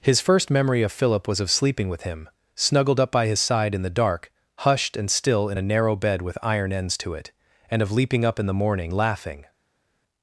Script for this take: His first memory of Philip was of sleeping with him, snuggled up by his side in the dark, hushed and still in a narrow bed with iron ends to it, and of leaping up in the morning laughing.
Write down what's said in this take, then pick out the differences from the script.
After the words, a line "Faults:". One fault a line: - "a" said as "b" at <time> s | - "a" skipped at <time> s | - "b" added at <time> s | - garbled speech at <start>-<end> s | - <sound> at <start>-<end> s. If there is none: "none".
His first memory of Philip was of sleeping with him, snuggled up by his side in the dark, hushed and still in a narrow bed with iron ends to it, and of leaping up in the morning laughing.
Faults:
none